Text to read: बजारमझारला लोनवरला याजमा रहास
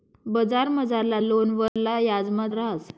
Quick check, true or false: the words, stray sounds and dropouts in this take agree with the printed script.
false